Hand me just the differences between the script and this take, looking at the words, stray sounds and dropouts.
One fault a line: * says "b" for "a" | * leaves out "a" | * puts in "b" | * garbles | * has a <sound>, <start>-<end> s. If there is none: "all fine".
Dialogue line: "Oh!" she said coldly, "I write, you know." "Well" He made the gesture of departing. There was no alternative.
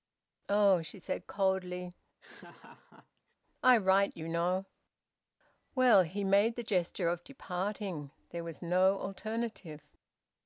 * has a laugh, 2.2-3.4 s